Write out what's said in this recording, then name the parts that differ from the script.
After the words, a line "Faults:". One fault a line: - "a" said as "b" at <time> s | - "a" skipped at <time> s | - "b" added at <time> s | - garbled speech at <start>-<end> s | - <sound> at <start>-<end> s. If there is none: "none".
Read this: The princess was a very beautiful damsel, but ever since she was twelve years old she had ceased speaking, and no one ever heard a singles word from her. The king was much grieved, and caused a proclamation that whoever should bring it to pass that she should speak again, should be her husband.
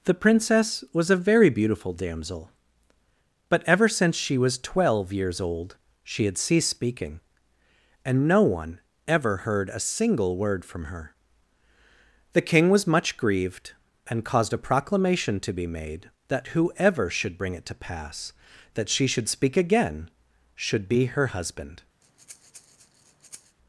The princess was a very beautiful damsel, but ever since she was twelve years old she had ceased speaking, and no one ever heard a single word from her. The king was much grieved, and caused a proclamation to be made that whoever should bring it to pass that she should speak again, should be her husband.
Faults:
- "singles" said as "single" at 9.8 s
- "to be made" added at 15.4 s
- breath at 22.0-23.6 s